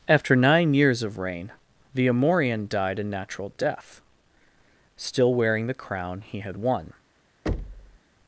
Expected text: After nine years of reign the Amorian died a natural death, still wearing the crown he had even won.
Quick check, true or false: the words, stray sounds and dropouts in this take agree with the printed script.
false